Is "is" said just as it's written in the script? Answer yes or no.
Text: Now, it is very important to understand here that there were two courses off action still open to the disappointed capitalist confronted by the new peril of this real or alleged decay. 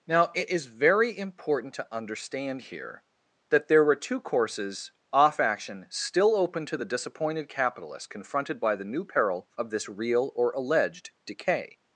yes